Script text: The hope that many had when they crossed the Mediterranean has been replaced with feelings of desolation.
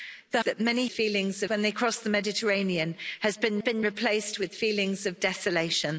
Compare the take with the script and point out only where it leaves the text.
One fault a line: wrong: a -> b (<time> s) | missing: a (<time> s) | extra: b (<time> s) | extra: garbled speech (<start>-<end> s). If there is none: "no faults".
missing: hope (0.4 s)
wrong: had -> feelings (0.9 s)
extra: been (3.6 s)